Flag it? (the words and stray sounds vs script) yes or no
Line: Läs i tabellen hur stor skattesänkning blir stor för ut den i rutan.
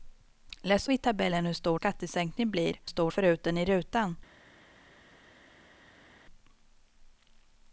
no